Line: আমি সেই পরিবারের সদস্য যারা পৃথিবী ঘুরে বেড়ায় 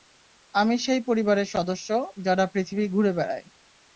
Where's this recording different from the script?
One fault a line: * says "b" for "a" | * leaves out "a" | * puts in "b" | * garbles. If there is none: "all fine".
all fine